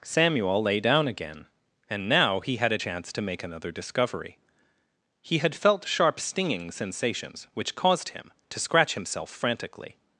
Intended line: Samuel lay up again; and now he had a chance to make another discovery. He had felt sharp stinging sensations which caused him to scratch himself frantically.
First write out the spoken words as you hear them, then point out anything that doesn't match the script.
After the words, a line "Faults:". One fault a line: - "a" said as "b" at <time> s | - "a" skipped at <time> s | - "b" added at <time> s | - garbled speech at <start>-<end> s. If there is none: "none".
Samuel lay down again; and now he had a chance to make another discovery. He had felt sharp stinging sensations which caused him to scratch himself frantically.
Faults:
- "up" said as "down" at 0.8 s